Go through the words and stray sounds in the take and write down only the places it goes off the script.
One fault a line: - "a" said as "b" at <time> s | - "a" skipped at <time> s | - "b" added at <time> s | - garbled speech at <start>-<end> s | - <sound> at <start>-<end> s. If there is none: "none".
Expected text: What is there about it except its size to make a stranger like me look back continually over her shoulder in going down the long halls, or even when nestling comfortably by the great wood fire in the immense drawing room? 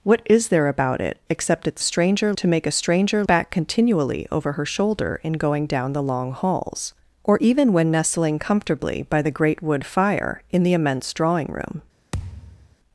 - "size" said as "stranger" at 1.8 s
- "like me look" skipped at 3.2 s
- thud at 12.1-12.8 s